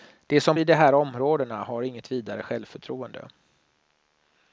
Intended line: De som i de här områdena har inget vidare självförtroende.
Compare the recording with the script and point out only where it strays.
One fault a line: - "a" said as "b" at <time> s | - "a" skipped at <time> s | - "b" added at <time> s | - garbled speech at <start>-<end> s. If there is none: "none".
none